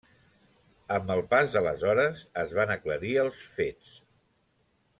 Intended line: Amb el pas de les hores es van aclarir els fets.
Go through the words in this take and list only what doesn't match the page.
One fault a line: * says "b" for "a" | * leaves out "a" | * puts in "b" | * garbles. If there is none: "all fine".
all fine